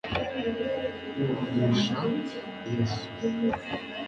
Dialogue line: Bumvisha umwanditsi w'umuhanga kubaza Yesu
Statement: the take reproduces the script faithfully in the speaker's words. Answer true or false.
false